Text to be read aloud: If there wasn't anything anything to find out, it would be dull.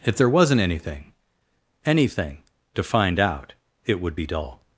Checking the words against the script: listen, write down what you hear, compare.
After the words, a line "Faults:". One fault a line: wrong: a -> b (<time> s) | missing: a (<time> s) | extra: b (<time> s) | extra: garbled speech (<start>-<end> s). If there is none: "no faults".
If there wasn't anything anything to find out, it would be dull.
Faults:
no faults